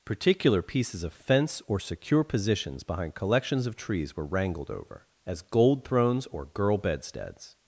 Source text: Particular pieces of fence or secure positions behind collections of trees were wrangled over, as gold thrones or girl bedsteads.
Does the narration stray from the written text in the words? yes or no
no